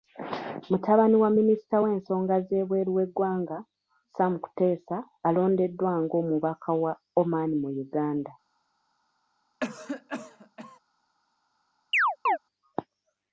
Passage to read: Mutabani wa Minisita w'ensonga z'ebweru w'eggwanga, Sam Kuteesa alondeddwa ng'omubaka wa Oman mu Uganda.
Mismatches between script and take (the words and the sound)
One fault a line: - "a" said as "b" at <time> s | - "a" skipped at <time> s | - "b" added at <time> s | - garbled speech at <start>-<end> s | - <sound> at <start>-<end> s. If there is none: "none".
- cough at 9.6-10.8 s
- chirp at 11.9-12.4 s